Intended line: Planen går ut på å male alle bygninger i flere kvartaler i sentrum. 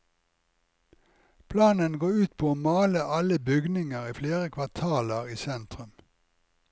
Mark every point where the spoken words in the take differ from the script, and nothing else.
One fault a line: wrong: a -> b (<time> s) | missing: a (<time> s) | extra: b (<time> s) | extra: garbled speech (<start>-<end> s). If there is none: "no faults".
no faults